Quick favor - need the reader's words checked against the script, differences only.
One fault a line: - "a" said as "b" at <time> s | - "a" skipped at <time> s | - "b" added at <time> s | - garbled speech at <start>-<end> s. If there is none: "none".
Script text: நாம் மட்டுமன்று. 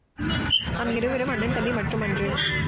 - "இருவரும் அண்ணன் தம்பி" added at 0.9 s